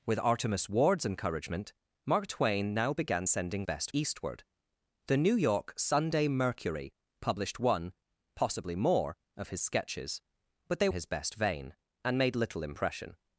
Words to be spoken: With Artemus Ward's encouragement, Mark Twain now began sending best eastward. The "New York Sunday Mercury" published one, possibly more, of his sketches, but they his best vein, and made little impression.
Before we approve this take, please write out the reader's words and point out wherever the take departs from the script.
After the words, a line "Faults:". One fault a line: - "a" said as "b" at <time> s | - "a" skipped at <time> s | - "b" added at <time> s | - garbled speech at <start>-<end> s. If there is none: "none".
With Artemus Ward's encouragement, Mark Twain now began sending best eastward. The "New York Sunday Mercury" published one, possibly more, of his sketches, but they his best vein, and made little impression.
Faults:
none